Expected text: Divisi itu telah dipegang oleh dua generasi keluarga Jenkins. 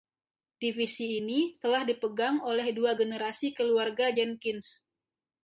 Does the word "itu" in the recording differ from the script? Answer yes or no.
yes